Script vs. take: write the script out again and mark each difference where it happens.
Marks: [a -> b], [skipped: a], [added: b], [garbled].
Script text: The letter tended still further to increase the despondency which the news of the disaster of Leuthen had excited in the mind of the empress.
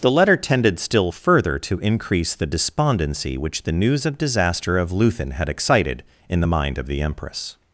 The letter tended still further to increase the despondency which the news of [skipped: the] disaster of Leuthen had excited in the mind of the empress.